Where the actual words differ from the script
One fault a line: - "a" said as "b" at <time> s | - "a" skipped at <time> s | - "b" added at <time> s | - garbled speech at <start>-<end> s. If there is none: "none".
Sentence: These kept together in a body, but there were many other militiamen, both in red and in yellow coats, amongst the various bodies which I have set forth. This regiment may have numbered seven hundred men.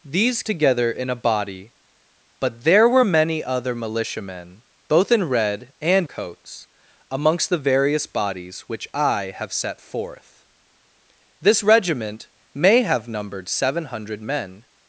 - "kept" skipped at 0.4 s
- "in yellow" skipped at 6.1 s